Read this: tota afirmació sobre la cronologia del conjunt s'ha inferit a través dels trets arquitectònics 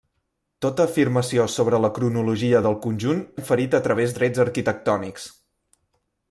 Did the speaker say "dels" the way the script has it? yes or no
no